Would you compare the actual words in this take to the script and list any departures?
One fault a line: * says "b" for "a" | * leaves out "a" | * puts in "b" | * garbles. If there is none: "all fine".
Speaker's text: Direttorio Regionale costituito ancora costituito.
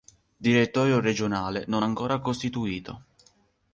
* says "non" for "costituito"